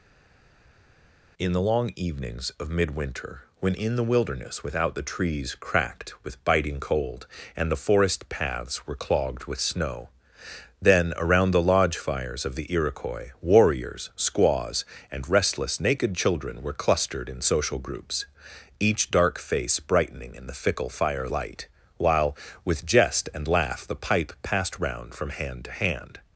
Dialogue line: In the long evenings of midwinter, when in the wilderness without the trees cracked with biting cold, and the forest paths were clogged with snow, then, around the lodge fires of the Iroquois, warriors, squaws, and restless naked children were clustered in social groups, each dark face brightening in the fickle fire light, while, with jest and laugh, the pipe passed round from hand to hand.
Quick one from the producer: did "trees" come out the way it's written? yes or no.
yes